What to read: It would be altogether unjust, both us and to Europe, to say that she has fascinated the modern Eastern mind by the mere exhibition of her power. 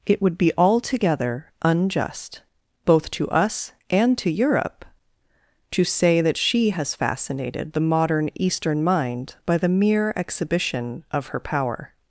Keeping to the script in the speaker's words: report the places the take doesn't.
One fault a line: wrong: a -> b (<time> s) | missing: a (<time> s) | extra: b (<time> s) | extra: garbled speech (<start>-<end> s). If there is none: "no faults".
extra: to (3.1 s)